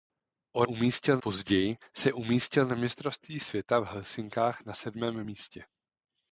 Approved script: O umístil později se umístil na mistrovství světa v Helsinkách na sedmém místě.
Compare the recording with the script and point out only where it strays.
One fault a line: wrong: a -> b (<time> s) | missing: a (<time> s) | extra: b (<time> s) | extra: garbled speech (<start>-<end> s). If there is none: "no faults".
no faults